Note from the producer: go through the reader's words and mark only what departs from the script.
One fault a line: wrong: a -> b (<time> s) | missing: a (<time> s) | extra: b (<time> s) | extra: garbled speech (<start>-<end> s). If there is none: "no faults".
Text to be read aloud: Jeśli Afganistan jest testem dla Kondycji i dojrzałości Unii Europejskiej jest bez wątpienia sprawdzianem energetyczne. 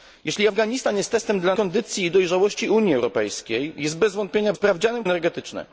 no faults